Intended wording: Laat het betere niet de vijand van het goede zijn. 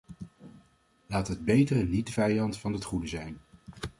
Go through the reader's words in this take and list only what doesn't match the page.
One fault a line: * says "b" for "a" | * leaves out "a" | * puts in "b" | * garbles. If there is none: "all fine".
all fine